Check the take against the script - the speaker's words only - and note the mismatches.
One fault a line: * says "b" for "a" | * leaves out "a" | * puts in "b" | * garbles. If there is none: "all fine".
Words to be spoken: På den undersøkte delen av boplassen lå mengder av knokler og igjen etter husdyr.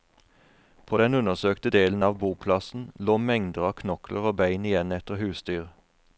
* puts in "bein"